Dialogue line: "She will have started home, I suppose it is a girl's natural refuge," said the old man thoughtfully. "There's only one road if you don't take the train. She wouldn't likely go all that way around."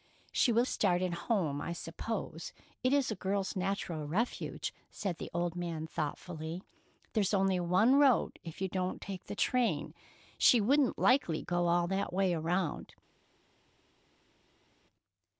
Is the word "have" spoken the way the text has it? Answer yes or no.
no